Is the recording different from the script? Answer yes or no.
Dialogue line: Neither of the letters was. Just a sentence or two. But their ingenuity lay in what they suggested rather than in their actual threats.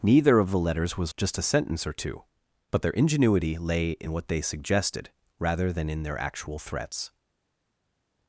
no